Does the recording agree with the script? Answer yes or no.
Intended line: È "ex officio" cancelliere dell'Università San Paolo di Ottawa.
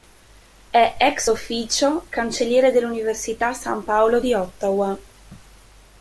yes